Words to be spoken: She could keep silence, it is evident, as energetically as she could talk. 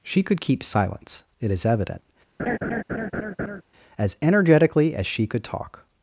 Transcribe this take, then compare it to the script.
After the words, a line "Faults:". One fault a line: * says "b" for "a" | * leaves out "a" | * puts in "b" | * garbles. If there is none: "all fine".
She could keep silence, it is evident, as energetically as she could talk.
Faults:
all fine